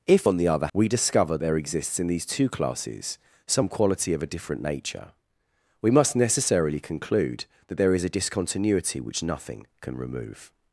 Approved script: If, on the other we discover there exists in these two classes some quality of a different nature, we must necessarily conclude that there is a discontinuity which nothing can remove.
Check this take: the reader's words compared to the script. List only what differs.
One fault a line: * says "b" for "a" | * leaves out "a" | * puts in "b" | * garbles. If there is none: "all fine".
all fine